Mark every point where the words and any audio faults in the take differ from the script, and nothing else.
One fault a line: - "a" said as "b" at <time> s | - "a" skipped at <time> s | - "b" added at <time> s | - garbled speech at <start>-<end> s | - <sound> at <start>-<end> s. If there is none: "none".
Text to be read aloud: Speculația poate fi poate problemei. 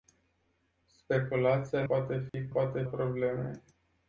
- dropout at 2.3-2.3 s